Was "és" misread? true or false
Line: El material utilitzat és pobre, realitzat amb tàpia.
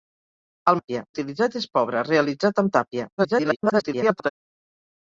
false